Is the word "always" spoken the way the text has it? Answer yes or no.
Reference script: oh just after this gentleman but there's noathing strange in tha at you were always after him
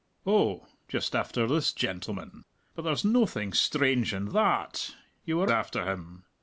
no